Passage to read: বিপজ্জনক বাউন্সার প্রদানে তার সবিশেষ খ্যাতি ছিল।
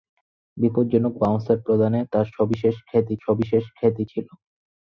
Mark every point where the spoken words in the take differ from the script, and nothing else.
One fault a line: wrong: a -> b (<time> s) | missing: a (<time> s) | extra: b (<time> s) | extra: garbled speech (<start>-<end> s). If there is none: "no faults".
extra: সবিশেষ খ্যাতি (3.2 s)